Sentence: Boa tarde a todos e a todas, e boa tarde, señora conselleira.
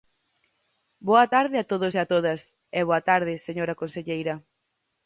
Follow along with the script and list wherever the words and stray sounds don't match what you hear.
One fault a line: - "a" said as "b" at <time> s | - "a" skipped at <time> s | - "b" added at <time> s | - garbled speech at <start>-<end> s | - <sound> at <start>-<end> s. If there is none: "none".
none